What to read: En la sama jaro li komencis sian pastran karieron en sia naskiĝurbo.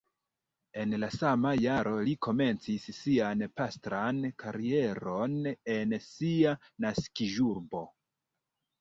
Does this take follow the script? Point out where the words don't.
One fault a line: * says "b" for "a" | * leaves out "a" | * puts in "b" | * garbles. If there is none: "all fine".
all fine